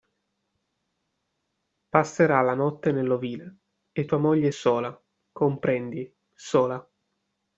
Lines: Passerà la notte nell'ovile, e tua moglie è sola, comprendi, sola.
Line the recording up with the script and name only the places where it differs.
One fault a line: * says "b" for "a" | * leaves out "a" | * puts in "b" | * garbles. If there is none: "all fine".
all fine